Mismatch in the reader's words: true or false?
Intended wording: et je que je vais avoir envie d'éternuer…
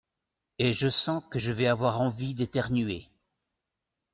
true